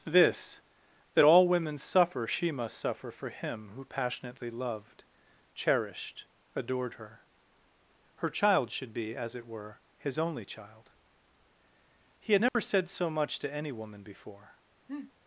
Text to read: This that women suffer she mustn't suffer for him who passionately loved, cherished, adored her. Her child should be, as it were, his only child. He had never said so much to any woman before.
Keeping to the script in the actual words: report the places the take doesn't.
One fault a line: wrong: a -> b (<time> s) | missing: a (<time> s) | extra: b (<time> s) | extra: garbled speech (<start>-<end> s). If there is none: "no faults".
extra: all (1.2 s)
wrong: mustn't -> must (2.5 s)